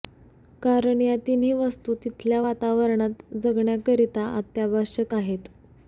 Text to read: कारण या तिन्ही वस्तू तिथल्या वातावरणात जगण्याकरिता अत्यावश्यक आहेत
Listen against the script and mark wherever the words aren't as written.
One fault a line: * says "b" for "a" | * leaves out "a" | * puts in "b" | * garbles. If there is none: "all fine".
all fine